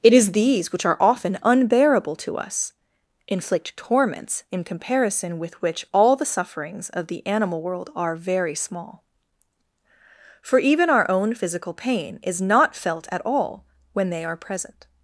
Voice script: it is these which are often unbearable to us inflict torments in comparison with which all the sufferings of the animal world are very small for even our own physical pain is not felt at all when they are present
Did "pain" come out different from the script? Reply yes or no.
no